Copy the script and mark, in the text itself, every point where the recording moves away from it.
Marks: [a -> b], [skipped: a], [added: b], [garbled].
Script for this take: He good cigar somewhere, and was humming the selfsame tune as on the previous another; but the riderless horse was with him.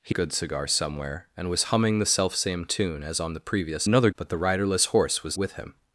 He good cigar somewhere, and was humming the selfsame tune as on the previous another; but the riderless horse was with him.